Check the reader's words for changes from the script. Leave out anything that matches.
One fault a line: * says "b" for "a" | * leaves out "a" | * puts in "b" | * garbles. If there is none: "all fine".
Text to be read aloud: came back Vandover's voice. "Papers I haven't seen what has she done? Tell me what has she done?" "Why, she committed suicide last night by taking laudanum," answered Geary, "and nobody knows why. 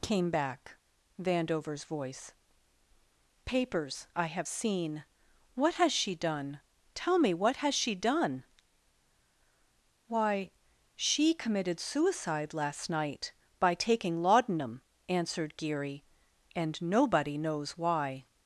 * says "have" for "haven't"